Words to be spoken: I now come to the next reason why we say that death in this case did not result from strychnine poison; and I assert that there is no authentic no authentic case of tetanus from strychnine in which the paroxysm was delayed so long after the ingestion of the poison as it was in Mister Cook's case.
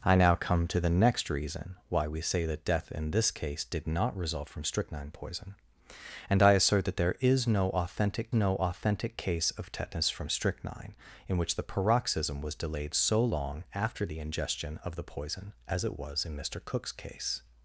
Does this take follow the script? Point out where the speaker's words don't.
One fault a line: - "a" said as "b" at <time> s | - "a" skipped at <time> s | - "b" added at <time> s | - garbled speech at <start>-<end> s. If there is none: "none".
none